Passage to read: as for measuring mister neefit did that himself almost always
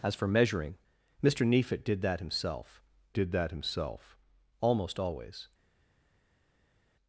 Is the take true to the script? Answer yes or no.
no